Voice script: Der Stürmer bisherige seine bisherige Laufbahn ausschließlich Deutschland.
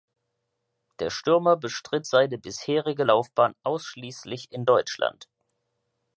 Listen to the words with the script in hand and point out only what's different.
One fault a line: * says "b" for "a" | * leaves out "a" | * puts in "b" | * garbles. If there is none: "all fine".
* says "bestritt" for "bisherige"
* puts in "in"